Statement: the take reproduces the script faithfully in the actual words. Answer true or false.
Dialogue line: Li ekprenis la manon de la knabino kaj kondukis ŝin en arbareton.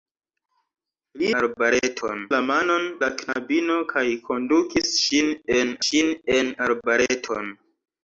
false